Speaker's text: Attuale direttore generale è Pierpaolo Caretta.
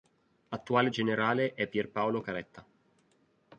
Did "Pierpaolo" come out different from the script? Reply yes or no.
no